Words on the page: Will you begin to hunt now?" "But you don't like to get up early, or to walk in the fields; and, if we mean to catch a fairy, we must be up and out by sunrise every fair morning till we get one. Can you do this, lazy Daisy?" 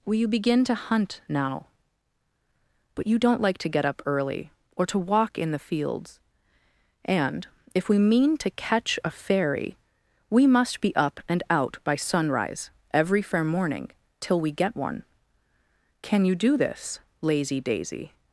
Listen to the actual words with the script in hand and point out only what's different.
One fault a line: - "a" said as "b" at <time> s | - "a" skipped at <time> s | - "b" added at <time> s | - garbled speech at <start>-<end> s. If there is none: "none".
none